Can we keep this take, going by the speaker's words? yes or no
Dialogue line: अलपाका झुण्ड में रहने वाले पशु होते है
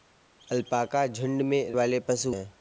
no